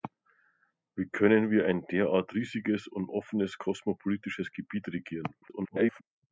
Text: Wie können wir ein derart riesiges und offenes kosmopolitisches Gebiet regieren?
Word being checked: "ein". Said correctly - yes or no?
yes